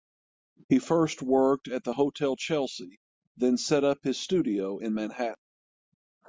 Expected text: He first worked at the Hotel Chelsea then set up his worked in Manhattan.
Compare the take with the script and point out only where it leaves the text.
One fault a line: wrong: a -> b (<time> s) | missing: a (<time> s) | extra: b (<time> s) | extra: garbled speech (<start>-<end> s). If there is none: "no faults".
wrong: worked -> studio (4.2 s)